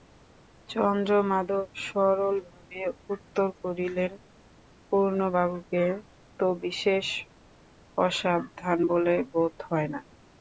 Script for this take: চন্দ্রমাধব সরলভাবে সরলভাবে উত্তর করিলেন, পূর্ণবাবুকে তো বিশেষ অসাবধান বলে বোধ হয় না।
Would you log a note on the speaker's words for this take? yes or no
yes